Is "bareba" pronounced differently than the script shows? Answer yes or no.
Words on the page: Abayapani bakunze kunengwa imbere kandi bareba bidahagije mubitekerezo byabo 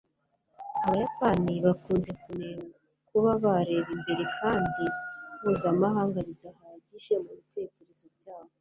yes